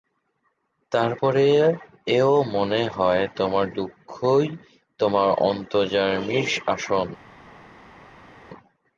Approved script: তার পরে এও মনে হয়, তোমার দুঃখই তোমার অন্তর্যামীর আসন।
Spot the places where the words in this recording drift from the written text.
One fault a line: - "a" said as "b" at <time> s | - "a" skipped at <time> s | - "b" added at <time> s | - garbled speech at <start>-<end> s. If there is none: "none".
none